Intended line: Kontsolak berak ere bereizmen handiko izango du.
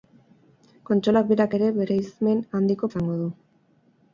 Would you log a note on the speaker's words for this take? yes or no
no